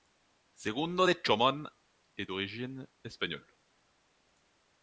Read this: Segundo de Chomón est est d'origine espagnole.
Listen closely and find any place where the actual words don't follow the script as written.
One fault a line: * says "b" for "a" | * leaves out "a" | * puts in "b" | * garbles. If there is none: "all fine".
* leaves out "est"